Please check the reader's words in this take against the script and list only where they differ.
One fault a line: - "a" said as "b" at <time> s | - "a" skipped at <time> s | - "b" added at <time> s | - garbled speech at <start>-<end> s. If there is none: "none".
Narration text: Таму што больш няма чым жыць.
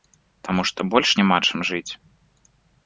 none